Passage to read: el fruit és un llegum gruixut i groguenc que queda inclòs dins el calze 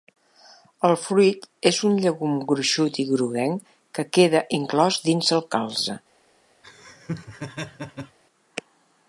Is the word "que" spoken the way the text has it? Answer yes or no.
yes